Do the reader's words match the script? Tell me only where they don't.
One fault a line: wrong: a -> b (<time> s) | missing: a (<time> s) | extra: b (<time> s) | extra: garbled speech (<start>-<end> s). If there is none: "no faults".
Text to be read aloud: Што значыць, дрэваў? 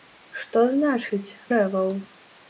no faults